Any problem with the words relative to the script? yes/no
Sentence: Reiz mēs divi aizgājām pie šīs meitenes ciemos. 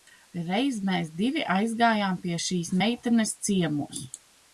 no